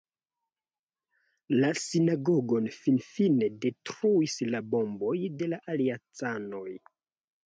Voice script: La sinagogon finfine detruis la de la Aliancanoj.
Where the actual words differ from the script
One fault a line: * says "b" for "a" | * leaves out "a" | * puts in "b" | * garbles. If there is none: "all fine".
* puts in "bomboj"